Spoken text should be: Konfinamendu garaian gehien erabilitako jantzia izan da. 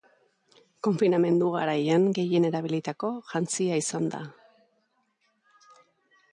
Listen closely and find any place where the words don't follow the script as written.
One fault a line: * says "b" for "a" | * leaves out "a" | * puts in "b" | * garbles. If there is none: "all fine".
all fine